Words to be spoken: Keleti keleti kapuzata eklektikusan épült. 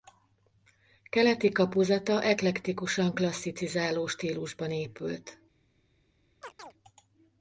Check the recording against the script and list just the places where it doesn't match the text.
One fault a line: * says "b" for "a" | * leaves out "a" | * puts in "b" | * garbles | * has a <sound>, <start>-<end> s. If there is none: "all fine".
* leaves out "keleti"
* puts in "klasszicizáló stílusban"
* has a chirp, 6.4-6.7 s